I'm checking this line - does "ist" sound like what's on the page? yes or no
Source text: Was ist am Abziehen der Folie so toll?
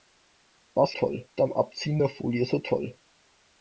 no